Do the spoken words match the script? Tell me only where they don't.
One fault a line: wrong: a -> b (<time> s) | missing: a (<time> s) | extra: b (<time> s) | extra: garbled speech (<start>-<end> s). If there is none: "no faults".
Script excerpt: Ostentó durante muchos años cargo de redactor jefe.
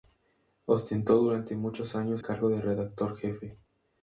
no faults